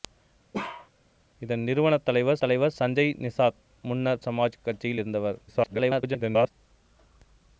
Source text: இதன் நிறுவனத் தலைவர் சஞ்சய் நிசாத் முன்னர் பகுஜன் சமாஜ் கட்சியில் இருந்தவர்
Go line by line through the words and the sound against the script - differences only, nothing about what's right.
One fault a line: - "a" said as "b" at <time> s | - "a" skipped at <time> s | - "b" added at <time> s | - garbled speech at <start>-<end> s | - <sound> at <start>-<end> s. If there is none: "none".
- bark at 0.5-0.9 s
- "தலைவர்" added at 2.4 s
- "பகுஜன்" skipped at 4.2 s
- garbled speech at 5.5-6.5 s